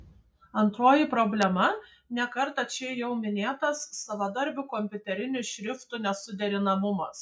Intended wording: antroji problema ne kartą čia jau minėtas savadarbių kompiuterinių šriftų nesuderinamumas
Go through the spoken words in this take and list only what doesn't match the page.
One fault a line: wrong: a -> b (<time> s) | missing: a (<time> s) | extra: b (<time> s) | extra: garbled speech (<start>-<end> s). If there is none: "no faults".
no faults